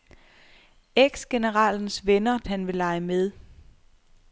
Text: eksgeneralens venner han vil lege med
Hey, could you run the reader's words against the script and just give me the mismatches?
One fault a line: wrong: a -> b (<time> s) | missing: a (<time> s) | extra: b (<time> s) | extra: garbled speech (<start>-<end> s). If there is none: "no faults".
no faults